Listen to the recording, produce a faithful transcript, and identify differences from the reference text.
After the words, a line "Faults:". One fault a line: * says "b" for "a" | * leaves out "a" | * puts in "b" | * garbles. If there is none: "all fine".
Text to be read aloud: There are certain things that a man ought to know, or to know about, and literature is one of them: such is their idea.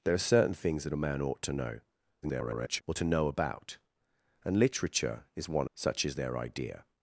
There are certain things that a man ought to know, [garbled] or to know about, and literature is one: such is their idea.
Faults:
* garbles
* leaves out "of them"